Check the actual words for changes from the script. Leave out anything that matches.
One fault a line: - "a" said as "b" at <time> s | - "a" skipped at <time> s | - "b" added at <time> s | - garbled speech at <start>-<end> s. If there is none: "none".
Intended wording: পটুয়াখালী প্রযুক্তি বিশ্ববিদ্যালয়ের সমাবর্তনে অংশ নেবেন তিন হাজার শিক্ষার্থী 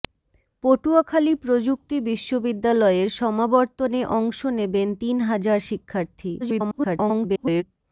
- garbled speech at 6.4-7.6 s